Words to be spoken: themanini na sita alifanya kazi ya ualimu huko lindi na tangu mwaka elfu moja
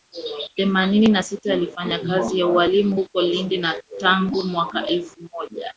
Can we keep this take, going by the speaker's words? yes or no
yes